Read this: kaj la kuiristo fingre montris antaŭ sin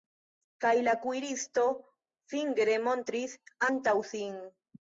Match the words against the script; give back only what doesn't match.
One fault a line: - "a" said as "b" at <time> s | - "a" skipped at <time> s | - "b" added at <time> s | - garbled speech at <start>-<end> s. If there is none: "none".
none